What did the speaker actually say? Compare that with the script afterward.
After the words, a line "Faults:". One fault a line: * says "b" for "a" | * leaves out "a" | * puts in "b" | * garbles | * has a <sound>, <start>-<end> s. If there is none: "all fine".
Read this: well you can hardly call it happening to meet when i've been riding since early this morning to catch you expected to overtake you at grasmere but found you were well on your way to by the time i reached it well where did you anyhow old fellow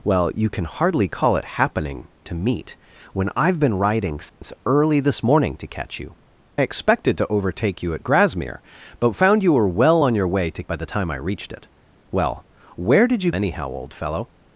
well you can hardly call it happening to meet when i've been riding since early this morning to catch you expected to overtake you at grasmere but found you were well on your way to by the time i reached it well where did you anyhow old fellow
Faults:
* has a dropout, 4.3-4.4 s